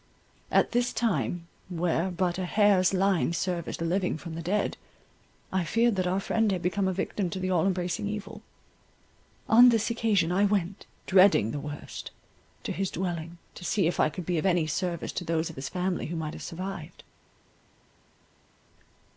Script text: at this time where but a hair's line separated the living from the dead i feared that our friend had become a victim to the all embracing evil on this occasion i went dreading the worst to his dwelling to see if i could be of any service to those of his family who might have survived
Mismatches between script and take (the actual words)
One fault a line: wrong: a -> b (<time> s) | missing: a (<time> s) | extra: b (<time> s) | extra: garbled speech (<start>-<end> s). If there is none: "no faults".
wrong: separated -> service (3.3 s)